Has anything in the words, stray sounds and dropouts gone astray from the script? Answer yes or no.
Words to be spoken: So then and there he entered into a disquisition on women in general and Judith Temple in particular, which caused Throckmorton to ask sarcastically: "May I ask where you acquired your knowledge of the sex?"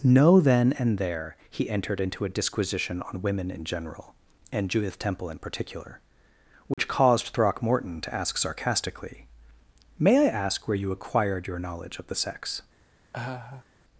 yes